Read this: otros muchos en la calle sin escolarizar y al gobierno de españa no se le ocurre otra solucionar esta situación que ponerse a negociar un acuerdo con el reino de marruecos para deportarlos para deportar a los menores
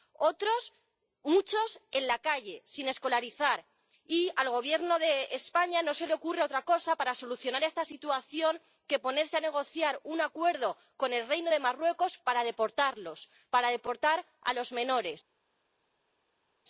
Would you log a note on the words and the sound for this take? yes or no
yes